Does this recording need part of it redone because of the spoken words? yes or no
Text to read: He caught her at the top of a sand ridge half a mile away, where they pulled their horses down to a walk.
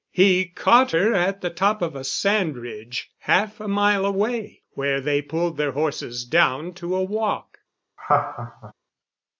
no